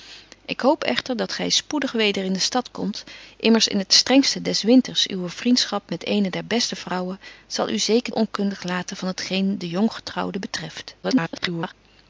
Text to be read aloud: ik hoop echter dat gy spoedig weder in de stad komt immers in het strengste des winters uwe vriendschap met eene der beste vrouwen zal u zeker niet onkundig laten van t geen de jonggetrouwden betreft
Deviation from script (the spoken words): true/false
true